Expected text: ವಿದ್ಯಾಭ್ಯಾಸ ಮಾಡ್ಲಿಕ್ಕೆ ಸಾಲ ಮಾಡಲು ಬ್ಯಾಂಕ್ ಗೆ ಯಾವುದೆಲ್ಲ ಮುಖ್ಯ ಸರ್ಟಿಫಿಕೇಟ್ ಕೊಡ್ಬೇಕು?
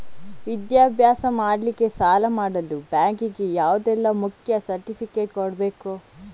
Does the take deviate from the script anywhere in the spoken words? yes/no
no